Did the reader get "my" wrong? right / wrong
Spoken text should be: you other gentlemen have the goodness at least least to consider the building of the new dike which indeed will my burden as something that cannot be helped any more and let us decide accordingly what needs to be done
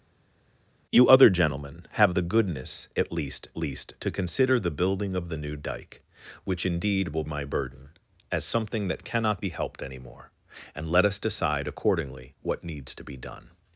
right